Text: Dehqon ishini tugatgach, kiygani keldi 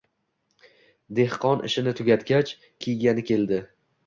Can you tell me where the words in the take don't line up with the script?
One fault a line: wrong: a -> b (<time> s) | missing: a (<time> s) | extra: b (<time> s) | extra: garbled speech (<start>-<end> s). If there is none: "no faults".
no faults